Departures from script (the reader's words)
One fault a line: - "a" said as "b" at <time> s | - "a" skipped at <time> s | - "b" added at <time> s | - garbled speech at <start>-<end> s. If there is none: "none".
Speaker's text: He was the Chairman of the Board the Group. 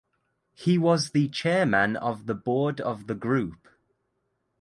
- "of" added at 2.8 s